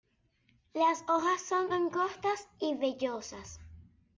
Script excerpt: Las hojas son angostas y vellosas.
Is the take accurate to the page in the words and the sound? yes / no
yes